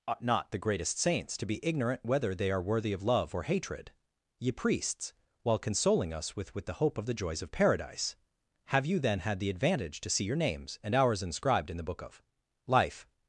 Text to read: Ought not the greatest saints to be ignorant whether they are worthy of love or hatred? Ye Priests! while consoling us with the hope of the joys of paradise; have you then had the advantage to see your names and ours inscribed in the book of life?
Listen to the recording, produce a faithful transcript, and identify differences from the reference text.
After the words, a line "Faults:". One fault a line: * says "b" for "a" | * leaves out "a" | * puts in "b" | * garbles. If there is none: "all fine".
Ought not the greatest saints to be ignorant whether they are worthy of love or hatred? Ye Priests! while consoling us with with the hope of the joys of paradise; have you then had the advantage to see your names and ours inscribed in the book of life?
Faults:
* puts in "with"